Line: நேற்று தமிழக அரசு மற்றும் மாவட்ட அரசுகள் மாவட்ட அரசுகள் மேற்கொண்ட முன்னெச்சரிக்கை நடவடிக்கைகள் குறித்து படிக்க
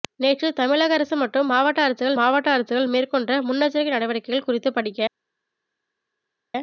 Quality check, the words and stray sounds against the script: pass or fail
pass